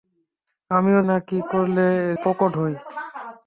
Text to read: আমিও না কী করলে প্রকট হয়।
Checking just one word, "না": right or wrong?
right